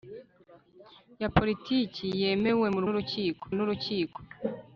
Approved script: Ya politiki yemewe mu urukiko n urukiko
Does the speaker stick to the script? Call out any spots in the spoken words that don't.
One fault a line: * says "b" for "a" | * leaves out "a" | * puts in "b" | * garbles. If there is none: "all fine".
all fine